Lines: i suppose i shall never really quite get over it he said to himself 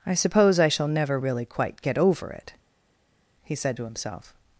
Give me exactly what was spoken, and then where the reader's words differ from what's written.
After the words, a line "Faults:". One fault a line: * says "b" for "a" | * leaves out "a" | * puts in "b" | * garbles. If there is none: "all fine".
i suppose i shall never really quite get over it he said to himself
Faults:
all fine